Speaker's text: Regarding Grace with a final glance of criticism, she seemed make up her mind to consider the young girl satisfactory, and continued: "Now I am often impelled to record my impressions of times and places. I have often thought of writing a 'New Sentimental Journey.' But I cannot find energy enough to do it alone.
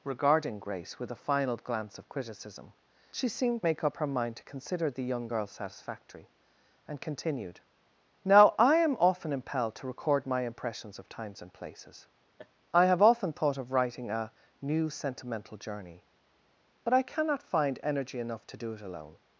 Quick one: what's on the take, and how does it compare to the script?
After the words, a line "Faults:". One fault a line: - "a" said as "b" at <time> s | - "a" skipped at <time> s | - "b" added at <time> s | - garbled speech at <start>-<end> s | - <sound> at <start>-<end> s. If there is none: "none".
Regarding Grace with a final glance of criticism, she seemed make up her mind to consider the young girl satisfactory, and continued: "Now I am often impelled to record my impressions of times and places. I have often thought of writing a 'New Sentimental Journey.' But I cannot find energy enough to do it alone.
Faults:
- laugh at 12.4-12.5 s